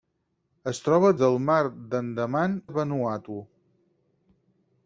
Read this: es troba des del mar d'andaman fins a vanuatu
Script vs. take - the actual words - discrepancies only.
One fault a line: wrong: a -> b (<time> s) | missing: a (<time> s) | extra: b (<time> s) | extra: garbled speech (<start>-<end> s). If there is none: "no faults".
missing: des (1.1 s)
missing: fins (2.6 s)